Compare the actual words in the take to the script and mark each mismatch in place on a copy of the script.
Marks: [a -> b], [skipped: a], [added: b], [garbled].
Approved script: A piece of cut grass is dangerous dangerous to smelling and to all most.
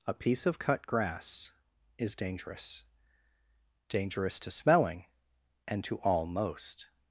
A piece of cut grass is dangerous dangerous to smelling and to all most.